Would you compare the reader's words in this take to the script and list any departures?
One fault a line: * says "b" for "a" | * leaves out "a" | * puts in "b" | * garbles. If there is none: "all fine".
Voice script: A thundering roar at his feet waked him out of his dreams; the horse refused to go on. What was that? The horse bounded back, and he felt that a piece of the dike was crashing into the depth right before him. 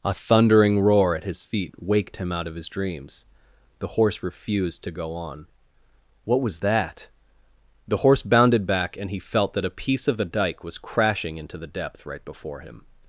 all fine